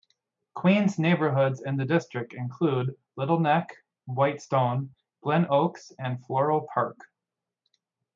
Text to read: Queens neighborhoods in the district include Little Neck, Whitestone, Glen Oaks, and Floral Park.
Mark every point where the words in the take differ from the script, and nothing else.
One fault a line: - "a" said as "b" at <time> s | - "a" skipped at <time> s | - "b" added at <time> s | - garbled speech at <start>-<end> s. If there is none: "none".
none